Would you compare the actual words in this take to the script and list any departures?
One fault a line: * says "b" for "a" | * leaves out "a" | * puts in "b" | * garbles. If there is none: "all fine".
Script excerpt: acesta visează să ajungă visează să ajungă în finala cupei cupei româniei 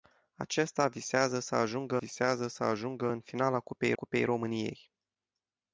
all fine